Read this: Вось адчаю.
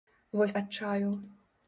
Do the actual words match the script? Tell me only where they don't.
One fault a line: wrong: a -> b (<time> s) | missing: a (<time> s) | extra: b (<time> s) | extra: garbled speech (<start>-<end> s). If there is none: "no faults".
no faults